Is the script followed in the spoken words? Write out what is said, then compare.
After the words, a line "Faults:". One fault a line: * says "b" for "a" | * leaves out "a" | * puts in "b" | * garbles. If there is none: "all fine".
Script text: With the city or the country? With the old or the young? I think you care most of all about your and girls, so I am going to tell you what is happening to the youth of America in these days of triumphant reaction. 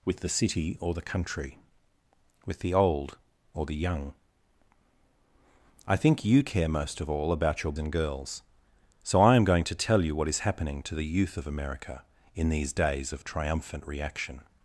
With the city or the country? With the old or the young? I think you care most of all about your and girls, so I am going to tell you what is happening to the youth of America in these days of triumphant reaction.
Faults:
all fine